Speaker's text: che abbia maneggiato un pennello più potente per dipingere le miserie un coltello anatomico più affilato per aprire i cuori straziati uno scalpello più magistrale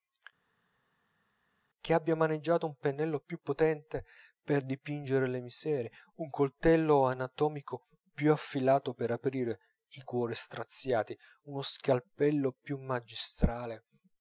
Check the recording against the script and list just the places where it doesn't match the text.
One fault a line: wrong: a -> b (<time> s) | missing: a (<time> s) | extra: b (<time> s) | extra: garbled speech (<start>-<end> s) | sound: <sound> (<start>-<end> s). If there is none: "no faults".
no faults